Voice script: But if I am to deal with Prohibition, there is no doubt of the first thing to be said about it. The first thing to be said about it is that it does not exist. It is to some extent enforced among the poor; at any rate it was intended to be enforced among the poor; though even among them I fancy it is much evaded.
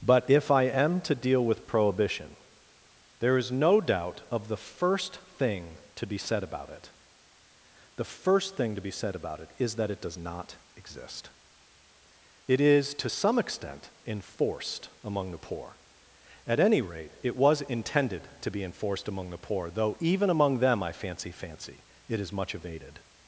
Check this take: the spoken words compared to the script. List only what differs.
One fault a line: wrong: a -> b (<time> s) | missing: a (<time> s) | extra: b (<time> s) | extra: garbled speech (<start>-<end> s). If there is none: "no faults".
extra: fancy (21.3 s)